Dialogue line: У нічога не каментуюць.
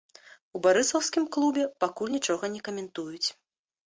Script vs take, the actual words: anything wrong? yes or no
yes